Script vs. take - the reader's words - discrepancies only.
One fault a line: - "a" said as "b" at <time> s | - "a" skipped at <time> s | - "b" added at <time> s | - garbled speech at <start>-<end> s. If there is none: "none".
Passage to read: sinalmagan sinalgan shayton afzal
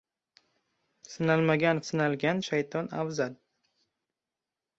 none